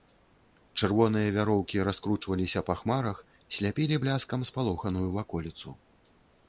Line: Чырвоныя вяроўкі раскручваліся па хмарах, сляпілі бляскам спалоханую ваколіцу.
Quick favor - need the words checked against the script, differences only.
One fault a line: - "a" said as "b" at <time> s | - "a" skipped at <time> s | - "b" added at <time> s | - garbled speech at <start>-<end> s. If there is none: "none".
none